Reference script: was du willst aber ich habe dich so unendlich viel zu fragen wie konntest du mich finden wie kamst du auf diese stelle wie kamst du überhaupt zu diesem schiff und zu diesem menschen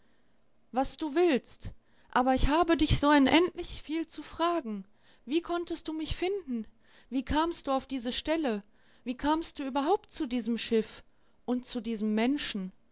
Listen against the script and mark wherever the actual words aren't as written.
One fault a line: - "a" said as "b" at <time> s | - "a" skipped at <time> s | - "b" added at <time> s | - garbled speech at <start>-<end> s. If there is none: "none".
none